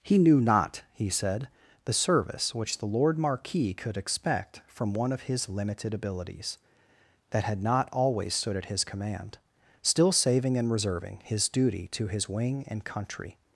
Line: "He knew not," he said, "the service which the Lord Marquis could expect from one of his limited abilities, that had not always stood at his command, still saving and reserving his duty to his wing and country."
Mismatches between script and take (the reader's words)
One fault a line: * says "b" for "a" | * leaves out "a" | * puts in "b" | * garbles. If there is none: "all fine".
all fine